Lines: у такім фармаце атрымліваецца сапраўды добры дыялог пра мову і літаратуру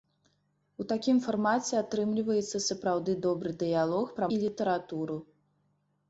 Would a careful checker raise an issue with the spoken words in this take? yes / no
yes